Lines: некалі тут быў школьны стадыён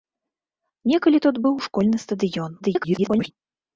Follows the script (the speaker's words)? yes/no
no